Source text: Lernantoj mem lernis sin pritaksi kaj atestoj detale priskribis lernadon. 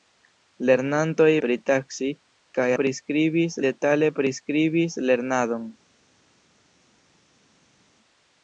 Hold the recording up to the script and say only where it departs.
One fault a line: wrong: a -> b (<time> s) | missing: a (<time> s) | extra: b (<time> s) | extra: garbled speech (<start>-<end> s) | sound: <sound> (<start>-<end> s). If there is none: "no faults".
missing: mem lernis sin (1.3 s)
wrong: atestoj -> priskribis (2.8 s)